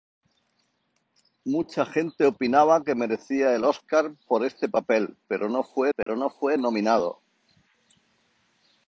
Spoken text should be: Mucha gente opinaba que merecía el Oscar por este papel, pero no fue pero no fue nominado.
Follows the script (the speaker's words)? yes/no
yes